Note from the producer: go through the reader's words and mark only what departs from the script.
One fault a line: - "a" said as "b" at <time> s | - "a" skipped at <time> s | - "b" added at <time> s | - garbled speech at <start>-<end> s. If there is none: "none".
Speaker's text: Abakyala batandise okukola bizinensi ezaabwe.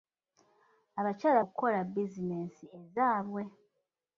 - "batandise" skipped at 1.4 s